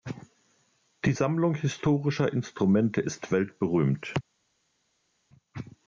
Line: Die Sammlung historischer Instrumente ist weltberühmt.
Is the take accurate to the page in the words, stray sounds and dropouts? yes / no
yes